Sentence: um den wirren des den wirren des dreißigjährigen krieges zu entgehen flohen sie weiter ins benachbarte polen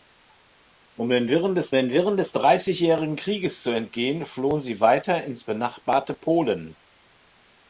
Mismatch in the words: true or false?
false